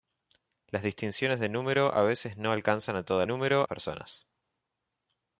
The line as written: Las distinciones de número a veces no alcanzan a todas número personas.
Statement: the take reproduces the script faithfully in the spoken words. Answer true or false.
true